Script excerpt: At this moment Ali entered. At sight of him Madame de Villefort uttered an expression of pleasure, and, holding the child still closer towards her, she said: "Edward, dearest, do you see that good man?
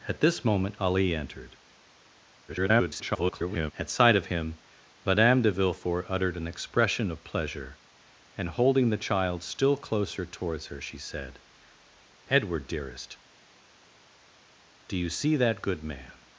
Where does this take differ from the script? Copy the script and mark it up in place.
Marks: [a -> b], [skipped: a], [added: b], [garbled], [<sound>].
At this moment Ali entered. [garbled] At sight of him Madame de Villefort uttered an expression of pleasure, and, holding the child still closer towards her, she said: "Edward, dearest, do you see that good man?